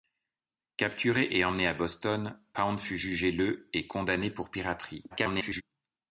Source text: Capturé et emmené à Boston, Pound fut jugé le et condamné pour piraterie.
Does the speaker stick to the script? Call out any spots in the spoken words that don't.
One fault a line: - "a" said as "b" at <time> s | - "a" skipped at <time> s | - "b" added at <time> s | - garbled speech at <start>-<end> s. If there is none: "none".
- garbled speech at 5.1-5.6 s